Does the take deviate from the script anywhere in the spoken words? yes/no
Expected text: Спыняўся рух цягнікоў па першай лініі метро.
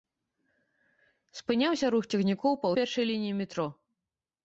no